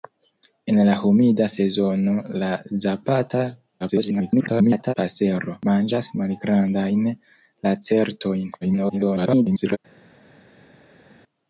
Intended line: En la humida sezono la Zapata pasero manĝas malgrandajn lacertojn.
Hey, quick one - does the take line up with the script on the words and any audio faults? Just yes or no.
no